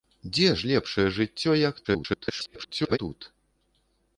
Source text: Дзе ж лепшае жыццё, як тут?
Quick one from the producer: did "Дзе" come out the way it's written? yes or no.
yes